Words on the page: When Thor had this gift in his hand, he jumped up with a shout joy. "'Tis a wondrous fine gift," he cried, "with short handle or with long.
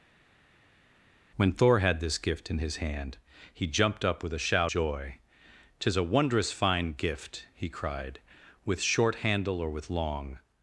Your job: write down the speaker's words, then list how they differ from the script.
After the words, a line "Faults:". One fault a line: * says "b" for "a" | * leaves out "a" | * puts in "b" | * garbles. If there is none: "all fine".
When Thor had this gift in his hand, he jumped up with a shout joy. "'Tis a wondrous fine gift," he cried, "with short handle or with long.
Faults:
all fine